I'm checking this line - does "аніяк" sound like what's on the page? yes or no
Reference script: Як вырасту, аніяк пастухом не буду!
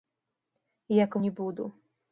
no